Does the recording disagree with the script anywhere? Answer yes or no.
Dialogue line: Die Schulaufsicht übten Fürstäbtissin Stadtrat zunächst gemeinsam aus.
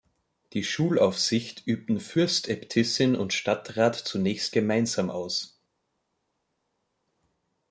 yes